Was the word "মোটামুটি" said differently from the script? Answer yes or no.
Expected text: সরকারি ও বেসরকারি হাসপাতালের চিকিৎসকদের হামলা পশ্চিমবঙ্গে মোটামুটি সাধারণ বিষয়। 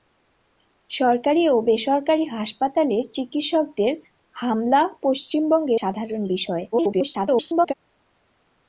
yes